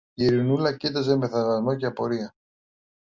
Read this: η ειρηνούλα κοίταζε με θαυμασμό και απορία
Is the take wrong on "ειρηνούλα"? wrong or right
right